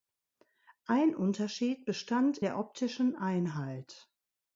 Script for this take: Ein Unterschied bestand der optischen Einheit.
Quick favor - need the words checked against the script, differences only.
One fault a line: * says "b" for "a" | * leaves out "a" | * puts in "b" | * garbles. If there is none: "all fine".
all fine